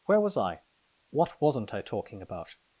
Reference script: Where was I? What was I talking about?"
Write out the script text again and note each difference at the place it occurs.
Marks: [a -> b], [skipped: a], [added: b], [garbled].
Where was I? What [was -> wasn't] I talking about?"